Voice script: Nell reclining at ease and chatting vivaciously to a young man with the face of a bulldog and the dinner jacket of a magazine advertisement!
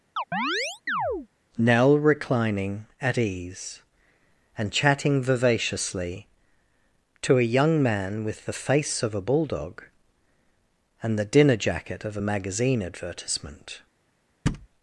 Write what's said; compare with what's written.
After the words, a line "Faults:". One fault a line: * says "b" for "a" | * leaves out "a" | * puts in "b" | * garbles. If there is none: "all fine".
Nell reclining at ease and chatting vivaciously to a young man with the face of a bulldog and the dinner jacket of a magazine advertisement!
Faults:
all fine